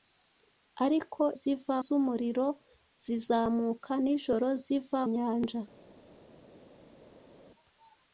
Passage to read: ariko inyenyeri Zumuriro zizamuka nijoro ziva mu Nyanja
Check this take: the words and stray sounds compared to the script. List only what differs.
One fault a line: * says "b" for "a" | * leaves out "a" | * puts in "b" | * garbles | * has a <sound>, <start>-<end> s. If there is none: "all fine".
* says "ziva" for "inyenyeri"
* leaves out "mu"